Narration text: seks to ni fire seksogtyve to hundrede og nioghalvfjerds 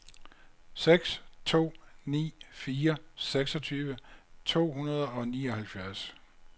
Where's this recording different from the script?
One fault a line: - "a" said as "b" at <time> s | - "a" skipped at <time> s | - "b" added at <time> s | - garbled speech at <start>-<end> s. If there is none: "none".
none